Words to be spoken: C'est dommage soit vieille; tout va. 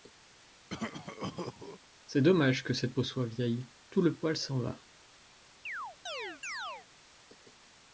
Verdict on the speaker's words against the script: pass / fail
fail